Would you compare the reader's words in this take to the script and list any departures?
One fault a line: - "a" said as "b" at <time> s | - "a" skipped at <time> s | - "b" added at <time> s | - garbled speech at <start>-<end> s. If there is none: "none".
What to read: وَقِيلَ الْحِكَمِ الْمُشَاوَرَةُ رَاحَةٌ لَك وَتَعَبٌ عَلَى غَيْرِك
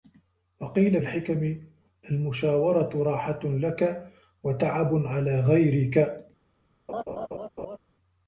none